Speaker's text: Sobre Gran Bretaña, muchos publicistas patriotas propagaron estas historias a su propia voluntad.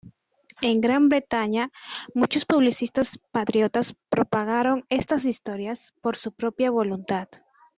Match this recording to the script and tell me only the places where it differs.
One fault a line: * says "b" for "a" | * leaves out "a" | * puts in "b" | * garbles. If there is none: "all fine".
* says "En" for "Sobre"
* says "por" for "a"